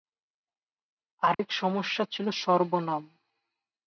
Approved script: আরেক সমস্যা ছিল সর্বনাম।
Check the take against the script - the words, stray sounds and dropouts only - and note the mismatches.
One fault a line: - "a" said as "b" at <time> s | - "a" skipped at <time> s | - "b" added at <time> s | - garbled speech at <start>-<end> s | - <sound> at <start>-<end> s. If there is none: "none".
- dropout at 1.3-1.4 s